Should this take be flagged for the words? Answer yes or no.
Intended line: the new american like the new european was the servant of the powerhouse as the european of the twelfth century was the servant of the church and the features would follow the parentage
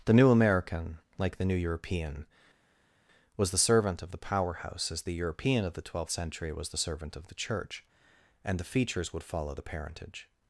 no